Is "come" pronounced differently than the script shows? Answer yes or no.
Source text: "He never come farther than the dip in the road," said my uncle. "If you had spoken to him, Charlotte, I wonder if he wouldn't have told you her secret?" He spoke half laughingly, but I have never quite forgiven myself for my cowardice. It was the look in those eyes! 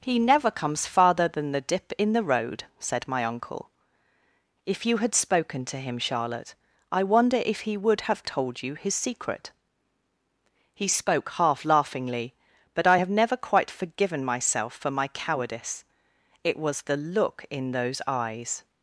yes